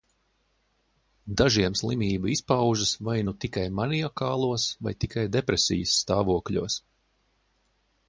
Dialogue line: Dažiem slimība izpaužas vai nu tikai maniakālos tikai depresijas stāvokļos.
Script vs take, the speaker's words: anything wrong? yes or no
yes